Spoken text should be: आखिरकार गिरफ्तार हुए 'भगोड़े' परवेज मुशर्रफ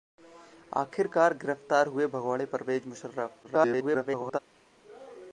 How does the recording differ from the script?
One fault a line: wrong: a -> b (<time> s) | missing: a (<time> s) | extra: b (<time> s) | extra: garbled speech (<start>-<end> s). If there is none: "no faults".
extra: garbled speech (3.4-4.4 s)